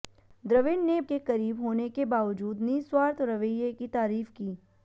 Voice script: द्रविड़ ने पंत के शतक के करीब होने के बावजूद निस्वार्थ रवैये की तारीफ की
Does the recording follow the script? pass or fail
fail